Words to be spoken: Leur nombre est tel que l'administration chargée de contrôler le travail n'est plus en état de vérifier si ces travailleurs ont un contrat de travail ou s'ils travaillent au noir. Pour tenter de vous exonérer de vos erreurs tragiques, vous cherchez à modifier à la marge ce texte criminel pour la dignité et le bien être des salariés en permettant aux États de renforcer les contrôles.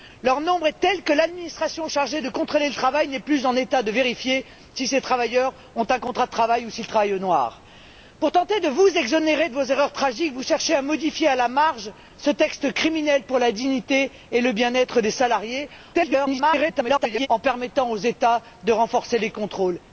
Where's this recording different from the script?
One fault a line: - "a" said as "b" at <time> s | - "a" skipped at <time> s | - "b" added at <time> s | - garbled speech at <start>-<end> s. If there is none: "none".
- garbled speech at 15.9-17.3 s